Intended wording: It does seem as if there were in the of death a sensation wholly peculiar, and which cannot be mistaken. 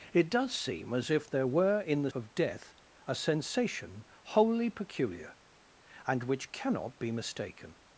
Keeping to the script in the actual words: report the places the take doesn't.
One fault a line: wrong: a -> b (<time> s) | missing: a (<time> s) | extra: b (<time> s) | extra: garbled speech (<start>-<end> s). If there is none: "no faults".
no faults